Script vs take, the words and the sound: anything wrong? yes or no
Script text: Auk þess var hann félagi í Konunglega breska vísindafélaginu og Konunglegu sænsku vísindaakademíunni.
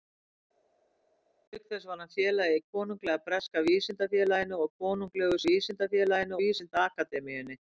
yes